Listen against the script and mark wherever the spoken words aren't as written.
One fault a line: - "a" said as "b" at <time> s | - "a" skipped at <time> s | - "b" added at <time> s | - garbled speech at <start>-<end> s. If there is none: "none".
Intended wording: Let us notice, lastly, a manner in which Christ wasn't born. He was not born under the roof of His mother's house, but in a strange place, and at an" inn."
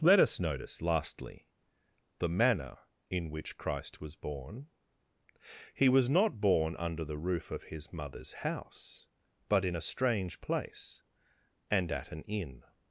- "a" said as "the" at 2.2 s
- "wasn't" said as "was" at 4.0 s